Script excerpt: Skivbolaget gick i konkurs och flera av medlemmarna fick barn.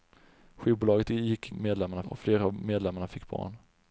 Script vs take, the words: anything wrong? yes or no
yes